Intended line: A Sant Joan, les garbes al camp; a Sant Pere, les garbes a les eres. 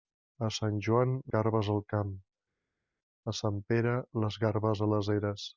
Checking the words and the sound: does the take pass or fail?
fail